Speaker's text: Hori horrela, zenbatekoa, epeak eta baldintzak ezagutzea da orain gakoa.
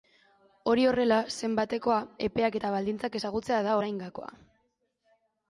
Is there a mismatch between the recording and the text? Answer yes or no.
no